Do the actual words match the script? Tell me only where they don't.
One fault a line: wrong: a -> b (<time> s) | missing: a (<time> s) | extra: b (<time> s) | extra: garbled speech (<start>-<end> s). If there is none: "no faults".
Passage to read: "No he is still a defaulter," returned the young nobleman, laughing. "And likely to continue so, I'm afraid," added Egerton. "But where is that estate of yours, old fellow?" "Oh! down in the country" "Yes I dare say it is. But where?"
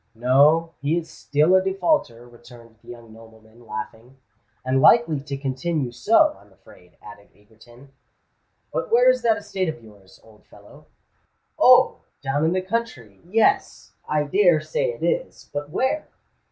no faults